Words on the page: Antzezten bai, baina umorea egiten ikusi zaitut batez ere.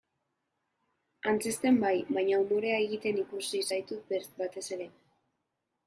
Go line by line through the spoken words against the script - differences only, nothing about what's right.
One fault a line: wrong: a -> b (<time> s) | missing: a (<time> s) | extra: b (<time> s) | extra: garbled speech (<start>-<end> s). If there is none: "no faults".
no faults